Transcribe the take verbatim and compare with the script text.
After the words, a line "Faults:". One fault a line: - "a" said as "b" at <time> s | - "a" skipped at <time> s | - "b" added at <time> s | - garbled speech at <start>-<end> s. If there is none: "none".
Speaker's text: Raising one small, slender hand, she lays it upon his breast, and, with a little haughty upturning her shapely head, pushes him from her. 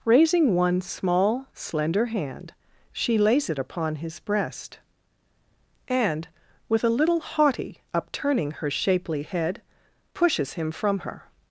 Raising one small, slender hand, she lays it upon his breast, and, with a little haughty upturning her shapely head, pushes him from her.
Faults:
none